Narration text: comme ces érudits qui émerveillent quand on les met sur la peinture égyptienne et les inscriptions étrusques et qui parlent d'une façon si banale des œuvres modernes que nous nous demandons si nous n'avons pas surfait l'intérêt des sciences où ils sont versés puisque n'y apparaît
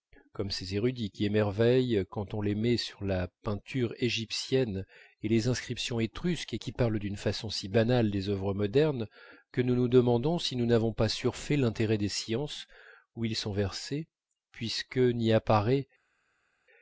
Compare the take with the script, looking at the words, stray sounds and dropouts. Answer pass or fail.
pass